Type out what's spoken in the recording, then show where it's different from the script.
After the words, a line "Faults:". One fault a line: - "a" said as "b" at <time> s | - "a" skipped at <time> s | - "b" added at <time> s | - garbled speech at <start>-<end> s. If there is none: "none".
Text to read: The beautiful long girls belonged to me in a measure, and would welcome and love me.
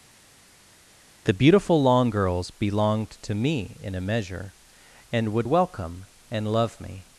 The beautiful long girls belonged to me in a measure, and would welcome and love me.
Faults:
none